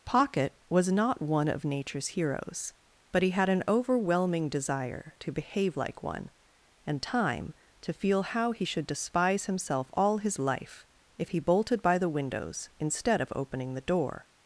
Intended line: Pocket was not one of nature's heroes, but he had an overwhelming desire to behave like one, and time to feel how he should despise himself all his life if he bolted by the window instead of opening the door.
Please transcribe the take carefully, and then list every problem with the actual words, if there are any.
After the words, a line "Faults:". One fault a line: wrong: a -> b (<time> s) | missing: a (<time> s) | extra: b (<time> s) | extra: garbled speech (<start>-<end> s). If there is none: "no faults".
Pocket was not one of nature's heroes, but he had an overwhelming desire to behave like one, and time to feel how he should despise himself all his life if he bolted by the windows instead of opening the door.
Faults:
wrong: window -> windows (12.1 s)